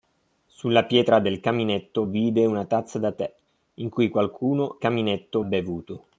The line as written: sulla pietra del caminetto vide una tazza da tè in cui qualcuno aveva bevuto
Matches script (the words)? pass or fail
fail